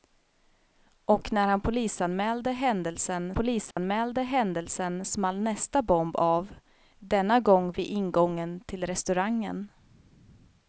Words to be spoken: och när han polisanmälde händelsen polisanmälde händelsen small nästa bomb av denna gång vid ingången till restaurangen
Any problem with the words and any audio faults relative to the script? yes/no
yes